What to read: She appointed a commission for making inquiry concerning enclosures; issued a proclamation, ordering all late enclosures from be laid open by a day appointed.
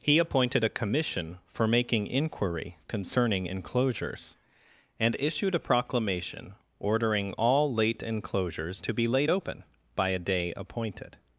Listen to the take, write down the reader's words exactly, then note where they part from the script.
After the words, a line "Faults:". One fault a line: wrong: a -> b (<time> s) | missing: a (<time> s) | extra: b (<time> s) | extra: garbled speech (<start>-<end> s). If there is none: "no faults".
He appointed a commission for making inquiry concerning enclosures; and issued a proclamation, ordering all late enclosures to be laid open by a day appointed.
Faults:
wrong: She -> He (0.0 s)
extra: and (5.0 s)
wrong: from -> to (8.8 s)